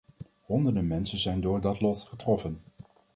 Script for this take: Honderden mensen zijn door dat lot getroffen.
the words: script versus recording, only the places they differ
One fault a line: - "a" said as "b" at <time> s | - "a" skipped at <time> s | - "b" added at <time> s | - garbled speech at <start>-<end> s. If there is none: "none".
none